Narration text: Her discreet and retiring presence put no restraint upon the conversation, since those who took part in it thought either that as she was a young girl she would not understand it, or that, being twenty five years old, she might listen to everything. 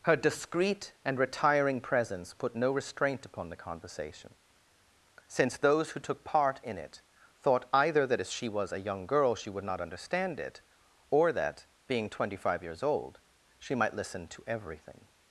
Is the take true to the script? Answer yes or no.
yes